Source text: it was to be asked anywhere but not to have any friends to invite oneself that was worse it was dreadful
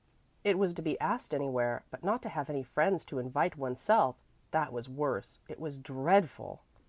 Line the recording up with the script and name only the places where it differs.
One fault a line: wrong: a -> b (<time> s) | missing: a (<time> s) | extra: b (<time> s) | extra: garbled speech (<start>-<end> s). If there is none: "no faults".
no faults